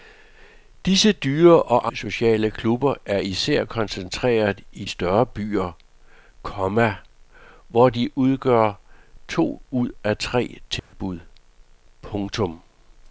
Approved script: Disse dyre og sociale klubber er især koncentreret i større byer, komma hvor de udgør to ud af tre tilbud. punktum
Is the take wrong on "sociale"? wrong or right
right